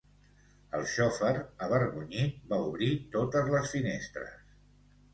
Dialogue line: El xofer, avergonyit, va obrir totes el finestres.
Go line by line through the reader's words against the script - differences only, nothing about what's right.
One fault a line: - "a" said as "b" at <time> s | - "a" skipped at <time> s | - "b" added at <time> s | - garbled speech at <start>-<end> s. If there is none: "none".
- "el" said as "les" at 3.5 s